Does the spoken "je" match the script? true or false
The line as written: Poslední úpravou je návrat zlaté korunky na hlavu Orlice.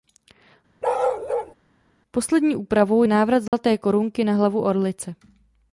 false